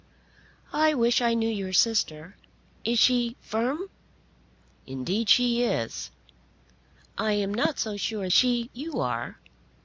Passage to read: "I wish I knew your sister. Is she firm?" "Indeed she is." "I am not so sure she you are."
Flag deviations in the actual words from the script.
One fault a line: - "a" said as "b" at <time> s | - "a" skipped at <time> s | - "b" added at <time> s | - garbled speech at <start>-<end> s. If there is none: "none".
none